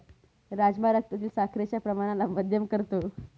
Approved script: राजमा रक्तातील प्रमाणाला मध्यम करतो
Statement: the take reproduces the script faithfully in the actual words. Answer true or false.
false